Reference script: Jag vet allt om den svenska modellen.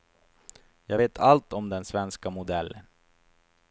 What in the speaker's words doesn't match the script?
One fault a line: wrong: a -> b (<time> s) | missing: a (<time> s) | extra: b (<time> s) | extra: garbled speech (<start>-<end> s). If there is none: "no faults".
no faults